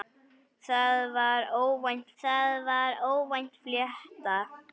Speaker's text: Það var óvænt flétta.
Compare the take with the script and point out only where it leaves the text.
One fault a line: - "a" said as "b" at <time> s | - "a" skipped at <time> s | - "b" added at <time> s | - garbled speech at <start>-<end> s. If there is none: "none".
- "það var óvænt" added at 2.2 s